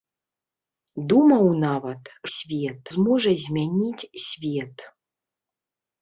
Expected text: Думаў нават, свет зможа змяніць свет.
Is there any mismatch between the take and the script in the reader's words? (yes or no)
no